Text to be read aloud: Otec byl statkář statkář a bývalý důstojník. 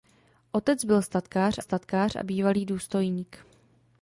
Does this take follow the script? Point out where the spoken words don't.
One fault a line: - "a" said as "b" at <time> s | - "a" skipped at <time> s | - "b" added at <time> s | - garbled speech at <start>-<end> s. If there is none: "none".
none